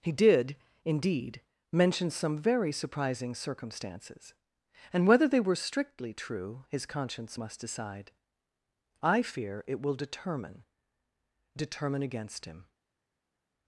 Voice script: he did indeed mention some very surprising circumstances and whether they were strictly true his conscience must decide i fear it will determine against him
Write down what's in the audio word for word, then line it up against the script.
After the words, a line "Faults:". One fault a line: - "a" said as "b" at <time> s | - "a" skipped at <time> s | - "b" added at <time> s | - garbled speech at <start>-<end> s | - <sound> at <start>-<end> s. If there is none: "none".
he did indeed mention some very surprising circumstances and whether they were strictly true his conscience must decide i fear it will determine determine against him
Faults:
- "determine" added at 11.6 s